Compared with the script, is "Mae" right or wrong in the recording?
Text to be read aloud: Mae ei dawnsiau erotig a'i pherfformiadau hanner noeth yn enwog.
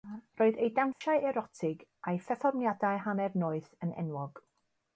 wrong